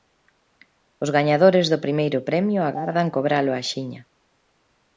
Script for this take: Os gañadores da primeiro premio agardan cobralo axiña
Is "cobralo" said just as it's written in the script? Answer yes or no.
yes